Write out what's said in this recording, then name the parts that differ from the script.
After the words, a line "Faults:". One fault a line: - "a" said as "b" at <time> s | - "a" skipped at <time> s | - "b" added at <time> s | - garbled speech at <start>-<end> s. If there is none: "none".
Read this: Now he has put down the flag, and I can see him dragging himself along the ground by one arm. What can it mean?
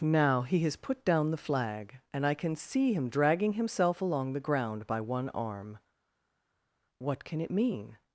Now he has put down the flag, and I can see him dragging himself along the ground by one arm. What can it mean?
Faults:
none